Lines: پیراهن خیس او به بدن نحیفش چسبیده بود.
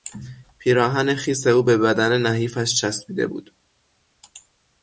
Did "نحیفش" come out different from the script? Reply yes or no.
no